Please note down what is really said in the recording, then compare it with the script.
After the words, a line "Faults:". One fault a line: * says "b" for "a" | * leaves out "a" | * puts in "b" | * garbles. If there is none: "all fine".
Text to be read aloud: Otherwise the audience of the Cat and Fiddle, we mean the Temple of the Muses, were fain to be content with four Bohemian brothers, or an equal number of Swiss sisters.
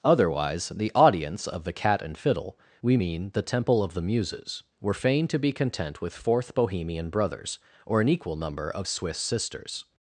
Otherwise the audience of the Cat and Fiddle, we mean the Temple of the Muses, were fain to be content with fourth Bohemian brothers, or an equal number of Swiss sisters.
Faults:
* says "fourth" for "four"